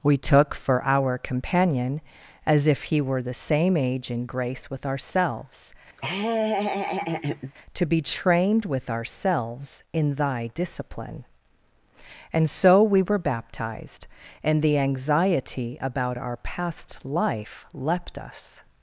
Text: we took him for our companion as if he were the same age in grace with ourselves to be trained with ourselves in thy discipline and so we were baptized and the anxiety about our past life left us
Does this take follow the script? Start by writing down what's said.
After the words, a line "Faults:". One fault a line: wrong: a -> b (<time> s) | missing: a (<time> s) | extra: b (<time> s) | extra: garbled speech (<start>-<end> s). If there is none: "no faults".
we took for our companion as if he were the same age in grace with ourselves to be trained with ourselves in thy discipline and so we were baptized and the anxiety about our past life leapt us
Faults:
missing: him (0.6 s)
wrong: left -> leapt (17.7 s)